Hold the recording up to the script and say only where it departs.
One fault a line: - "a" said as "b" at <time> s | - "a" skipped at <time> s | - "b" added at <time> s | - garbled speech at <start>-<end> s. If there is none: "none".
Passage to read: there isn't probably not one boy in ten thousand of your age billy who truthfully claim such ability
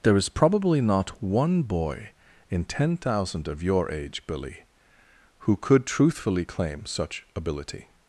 - "isn't" said as "is" at 0.2 s
- "could" added at 5.5 s